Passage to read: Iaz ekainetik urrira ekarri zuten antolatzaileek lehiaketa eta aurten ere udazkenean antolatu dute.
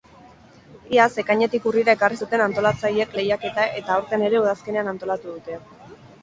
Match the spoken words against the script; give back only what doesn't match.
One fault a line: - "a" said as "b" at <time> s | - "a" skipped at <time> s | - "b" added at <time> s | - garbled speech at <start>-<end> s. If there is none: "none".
none